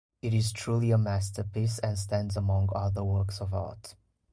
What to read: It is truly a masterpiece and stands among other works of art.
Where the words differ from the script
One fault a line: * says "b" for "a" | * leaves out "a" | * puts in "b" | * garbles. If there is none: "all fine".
all fine